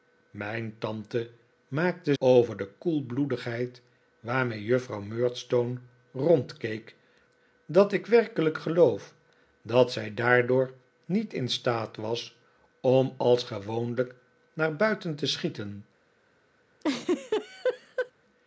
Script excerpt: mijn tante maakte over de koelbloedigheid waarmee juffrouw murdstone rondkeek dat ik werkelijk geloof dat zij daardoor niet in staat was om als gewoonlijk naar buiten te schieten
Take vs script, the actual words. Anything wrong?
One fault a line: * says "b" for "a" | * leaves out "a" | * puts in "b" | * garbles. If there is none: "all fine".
all fine